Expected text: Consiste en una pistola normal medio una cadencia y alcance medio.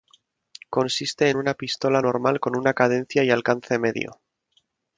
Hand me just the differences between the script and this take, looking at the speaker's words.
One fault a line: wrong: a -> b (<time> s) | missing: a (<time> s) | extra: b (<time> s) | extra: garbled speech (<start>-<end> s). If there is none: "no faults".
wrong: medio -> con (2.4 s)